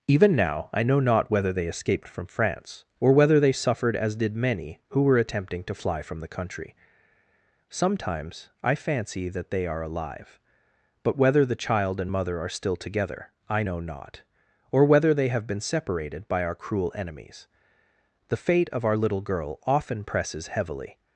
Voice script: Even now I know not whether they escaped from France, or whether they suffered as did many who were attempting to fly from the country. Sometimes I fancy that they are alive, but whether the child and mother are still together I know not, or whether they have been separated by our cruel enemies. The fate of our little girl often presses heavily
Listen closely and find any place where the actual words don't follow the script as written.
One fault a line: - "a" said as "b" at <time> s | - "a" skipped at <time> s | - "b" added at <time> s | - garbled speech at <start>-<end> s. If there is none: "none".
none